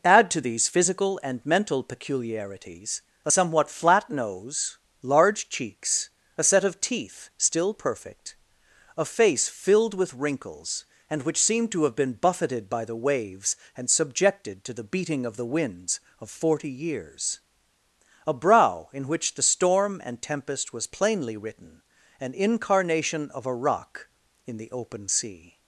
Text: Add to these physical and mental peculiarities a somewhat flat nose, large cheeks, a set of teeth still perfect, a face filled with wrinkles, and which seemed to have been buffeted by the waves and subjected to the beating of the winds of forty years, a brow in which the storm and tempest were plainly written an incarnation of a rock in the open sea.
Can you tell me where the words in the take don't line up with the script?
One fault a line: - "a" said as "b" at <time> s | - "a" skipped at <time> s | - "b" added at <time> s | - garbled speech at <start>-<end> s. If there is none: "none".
- "were" said as "was" at 20.7 s